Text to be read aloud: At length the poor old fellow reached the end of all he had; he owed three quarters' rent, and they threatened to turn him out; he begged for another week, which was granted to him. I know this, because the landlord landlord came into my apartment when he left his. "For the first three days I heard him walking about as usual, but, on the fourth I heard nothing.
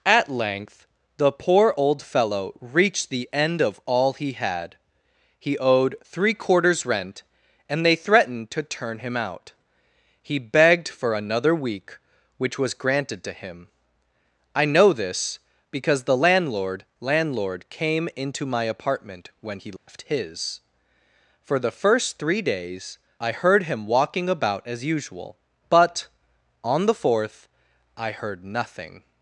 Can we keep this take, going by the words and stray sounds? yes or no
no